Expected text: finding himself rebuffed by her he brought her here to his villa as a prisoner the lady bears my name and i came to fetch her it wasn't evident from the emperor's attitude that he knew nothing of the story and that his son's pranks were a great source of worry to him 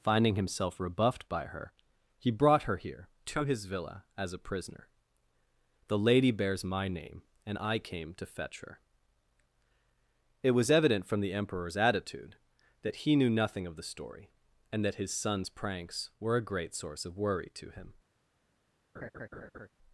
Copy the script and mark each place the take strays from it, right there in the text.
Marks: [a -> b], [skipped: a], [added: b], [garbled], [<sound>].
finding himself rebuffed by her he brought her here to his villa as a prisoner the lady bears my name and i came to fetch her it [wasn't -> was] evident from the emperor's attitude that he knew nothing of the story and that his son's pranks were a great source of worry to him [laugh]